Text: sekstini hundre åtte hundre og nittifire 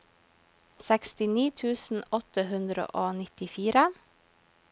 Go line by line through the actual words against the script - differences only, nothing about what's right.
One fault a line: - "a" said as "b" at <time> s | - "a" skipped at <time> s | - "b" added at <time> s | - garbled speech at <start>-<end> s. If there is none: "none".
- "hundre" said as "tusen" at 1.6 s